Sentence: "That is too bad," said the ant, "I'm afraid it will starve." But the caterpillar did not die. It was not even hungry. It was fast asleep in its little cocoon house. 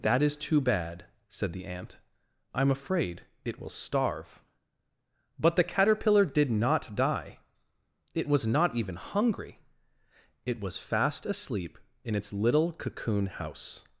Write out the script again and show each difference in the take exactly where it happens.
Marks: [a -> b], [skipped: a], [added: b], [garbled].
"That is too bad," said the ant, "I'm afraid it will starve." But the caterpillar did not die. It was not even hungry. It was fast asleep in its little cocoon house.